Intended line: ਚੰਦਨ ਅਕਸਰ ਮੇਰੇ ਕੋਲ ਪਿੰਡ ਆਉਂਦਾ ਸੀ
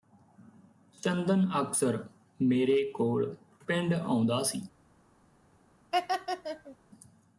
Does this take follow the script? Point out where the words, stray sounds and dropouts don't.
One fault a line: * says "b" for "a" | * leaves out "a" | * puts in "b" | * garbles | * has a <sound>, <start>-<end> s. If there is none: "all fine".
* has a laugh, 5.9-6.8 s